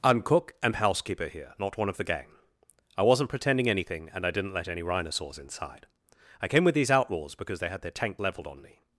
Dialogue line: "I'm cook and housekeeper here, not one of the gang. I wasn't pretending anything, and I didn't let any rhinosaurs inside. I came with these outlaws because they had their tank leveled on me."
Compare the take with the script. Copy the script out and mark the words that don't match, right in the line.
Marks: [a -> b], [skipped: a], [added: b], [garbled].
"I'm cook and housekeeper here, not one of the gang. I wasn't pretending anything, and I didn't let any rhinosaurs inside. I came with these outlaws because they had their tank leveled on me."